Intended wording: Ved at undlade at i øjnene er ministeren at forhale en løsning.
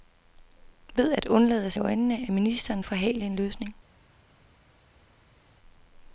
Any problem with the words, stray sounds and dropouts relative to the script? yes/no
no